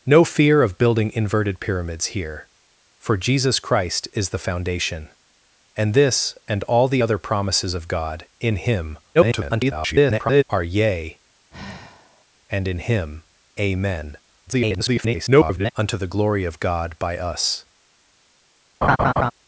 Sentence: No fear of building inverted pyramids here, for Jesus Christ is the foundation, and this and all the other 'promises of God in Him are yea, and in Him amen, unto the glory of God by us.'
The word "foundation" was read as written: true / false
true